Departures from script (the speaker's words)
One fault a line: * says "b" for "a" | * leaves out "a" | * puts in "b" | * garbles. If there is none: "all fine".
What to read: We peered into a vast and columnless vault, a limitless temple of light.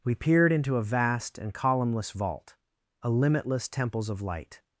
* says "temples" for "temple"